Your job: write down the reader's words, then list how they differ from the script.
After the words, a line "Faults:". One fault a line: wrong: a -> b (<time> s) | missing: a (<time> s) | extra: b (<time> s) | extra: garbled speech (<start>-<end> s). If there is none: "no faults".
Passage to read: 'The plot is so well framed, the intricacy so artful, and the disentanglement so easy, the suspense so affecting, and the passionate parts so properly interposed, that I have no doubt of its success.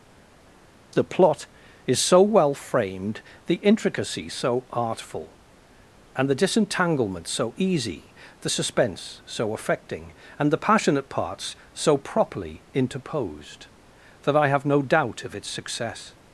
'The plot is so well framed, the intricacy so artful, and the disentanglement so easy, the suspense so affecting, and the passionate parts so properly interposed, that I have no doubt of its success.
Faults:
no faults